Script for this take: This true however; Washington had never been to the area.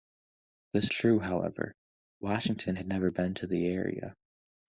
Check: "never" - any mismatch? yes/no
no